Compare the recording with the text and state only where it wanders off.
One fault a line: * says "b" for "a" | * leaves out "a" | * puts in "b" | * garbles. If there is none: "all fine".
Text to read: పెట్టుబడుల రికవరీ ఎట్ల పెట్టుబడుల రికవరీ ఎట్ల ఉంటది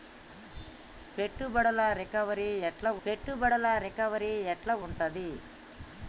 all fine